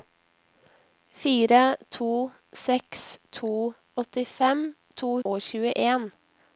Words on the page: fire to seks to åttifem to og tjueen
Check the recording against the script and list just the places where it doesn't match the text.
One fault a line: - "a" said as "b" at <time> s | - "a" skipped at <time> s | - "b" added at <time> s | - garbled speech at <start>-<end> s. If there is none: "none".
none